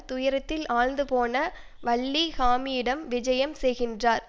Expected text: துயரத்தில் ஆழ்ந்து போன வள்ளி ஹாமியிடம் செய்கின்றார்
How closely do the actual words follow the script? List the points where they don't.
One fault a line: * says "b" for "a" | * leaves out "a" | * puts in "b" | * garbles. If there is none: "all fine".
* puts in "விஜயம்"